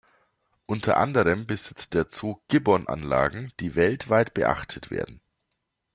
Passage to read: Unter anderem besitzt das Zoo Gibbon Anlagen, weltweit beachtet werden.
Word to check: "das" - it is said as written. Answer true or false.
false